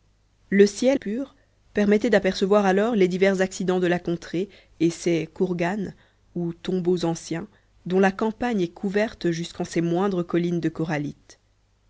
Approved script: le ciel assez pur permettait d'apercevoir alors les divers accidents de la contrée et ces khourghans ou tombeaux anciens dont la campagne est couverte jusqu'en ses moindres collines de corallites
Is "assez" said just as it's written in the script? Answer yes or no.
no